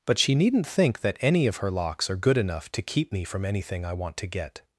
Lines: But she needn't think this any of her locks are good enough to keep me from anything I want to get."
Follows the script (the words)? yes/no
no